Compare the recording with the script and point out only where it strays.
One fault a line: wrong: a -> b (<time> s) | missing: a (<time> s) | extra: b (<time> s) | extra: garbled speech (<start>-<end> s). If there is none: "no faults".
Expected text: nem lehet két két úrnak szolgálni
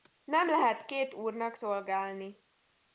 missing: két (1.1 s)